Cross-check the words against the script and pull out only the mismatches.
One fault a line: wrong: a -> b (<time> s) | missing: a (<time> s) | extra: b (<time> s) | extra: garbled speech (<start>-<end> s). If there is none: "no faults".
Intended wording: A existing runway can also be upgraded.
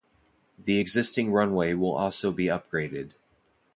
wrong: A -> The (0.6 s)
wrong: can -> will (1.7 s)